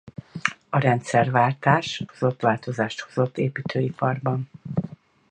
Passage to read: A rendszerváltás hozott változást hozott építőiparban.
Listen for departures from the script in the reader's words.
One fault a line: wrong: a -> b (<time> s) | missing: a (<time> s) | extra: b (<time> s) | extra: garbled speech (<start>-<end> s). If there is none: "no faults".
no faults